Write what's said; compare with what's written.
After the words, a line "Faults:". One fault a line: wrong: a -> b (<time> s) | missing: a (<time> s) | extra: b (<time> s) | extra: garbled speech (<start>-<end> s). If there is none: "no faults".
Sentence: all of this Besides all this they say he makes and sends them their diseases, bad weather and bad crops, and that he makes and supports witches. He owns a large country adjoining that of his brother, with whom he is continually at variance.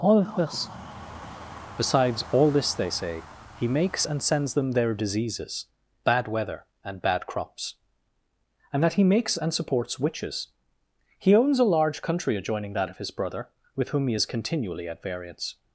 all of this Besides all this they say he makes and sends them their diseases, bad weather and bad crops, and that he makes and supports witches. He owns a large country adjoining that of his brother, with whom he is continually at variance.
Faults:
no faults